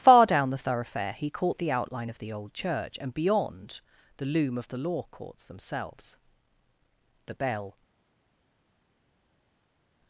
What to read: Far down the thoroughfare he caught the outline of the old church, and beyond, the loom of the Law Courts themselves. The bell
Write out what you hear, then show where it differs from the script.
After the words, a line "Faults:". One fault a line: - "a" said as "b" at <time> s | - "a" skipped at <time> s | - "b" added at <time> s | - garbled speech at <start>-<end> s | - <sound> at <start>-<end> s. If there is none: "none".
Far down the thoroughfare he caught the outline of the old church, and beyond, the loom of the Law Courts themselves. The bell
Faults:
none